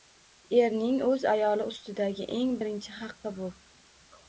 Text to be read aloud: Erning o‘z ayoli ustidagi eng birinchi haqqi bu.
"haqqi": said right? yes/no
yes